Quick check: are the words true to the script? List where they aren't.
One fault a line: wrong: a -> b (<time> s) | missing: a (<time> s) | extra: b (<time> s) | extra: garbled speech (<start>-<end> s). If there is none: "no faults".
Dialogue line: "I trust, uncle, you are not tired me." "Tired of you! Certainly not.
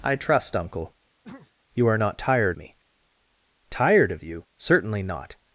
no faults